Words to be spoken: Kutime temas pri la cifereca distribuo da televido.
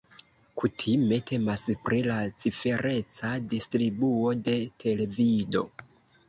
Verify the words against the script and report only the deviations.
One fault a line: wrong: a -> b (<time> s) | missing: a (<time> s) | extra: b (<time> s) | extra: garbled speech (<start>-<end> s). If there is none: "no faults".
wrong: da -> de (4.5 s)